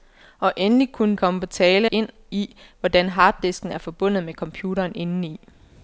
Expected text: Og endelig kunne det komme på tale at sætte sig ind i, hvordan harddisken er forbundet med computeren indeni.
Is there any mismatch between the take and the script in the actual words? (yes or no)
yes